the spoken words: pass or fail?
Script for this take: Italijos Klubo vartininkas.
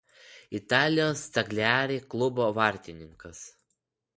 fail